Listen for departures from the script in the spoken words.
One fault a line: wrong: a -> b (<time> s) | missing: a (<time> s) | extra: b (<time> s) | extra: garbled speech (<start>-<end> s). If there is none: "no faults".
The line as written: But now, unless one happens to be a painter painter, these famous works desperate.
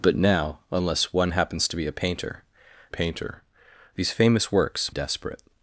no faults